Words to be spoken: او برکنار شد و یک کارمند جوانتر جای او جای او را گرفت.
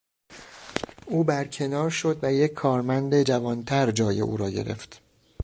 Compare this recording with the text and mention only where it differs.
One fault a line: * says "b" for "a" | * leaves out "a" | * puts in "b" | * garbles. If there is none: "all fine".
* leaves out "جای او"